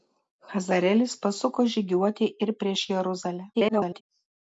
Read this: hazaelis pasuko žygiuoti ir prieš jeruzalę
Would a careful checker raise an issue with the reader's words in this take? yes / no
yes